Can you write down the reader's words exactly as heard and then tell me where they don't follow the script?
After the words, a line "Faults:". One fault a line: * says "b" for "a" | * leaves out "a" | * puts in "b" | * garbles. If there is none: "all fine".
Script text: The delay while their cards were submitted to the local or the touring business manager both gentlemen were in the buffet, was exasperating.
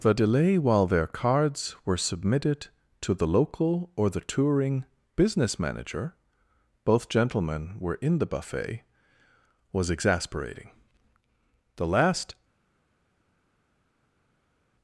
The delay while their cards were submitted to the local or the touring business manager both gentlemen were in the buffet, was exasperating. The last
Faults:
* puts in "The last"